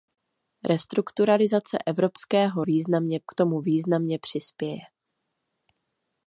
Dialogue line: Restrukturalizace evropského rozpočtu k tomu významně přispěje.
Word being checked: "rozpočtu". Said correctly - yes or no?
no